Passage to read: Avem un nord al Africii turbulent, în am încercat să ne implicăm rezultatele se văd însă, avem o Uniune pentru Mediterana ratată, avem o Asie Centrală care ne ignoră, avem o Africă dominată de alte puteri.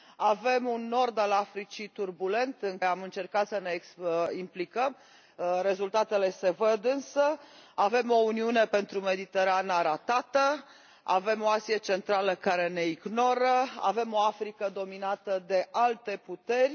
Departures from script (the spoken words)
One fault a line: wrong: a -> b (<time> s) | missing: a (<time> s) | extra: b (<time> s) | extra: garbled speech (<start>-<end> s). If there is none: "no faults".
no faults